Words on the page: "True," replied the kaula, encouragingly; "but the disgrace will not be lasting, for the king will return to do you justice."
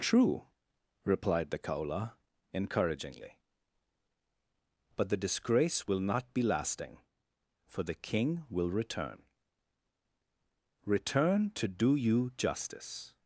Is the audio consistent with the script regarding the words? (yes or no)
no